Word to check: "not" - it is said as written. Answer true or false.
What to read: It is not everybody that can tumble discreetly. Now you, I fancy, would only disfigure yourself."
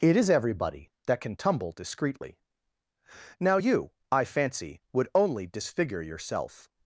false